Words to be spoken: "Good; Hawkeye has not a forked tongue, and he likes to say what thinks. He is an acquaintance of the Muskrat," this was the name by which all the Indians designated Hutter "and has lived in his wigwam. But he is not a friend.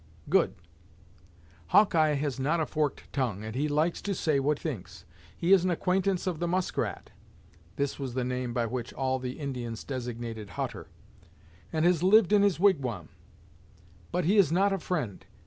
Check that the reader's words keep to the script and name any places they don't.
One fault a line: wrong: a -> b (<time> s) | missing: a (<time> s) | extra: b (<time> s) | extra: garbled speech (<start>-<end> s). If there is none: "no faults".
no faults